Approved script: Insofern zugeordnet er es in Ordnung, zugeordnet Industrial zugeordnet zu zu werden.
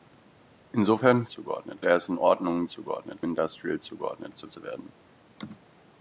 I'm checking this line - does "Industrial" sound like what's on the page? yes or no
yes